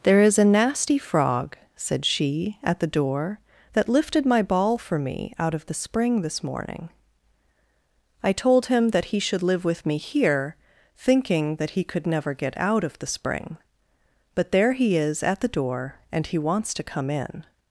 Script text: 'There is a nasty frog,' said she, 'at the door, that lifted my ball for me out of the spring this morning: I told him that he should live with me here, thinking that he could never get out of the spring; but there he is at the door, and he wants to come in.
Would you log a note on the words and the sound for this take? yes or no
no